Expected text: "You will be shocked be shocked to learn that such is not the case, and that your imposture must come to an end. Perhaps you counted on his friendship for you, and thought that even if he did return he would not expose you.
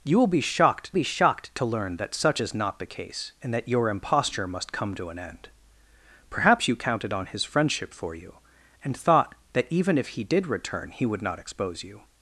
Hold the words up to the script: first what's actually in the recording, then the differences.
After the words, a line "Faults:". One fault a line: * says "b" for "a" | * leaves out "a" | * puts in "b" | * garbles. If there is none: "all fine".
"You will be shocked be shocked to learn that such is not the case, and that your imposture must come to an end. Perhaps you counted on his friendship for you, and thought that even if he did return he would not expose you.
Faults:
all fine